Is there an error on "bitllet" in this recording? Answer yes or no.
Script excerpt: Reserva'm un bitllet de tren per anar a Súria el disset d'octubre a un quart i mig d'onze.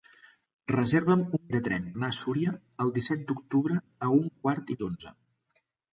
yes